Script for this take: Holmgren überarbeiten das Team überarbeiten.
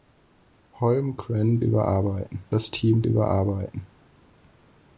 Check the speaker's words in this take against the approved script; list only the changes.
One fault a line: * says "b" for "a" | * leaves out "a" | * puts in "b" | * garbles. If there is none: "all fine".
all fine